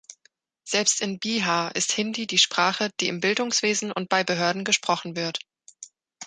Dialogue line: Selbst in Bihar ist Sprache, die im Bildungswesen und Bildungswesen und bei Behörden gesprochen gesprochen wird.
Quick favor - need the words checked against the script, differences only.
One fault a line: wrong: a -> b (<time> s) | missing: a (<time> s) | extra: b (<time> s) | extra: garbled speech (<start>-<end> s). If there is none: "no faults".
extra: Hindi die (1.9 s)
missing: Bildungswesen und (4.1 s)
missing: gesprochen (5.2 s)